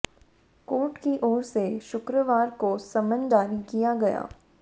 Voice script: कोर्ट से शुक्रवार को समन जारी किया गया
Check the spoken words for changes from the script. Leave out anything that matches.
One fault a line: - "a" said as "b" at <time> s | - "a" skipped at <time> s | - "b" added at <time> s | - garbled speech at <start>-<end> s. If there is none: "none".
- "की ओर" added at 1.0 s